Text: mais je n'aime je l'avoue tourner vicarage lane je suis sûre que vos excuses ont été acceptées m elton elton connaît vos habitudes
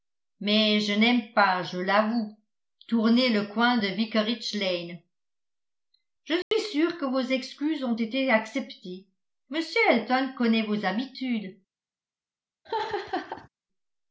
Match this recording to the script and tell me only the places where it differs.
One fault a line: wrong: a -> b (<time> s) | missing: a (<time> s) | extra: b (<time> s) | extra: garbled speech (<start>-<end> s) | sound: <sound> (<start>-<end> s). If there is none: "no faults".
extra: pas (1.3 s)
extra: le coin de (3.3 s)
sound: dropout (6.4-6.5 s)
missing: elton (10.3 s)
sound: laugh (12.6-13.5 s)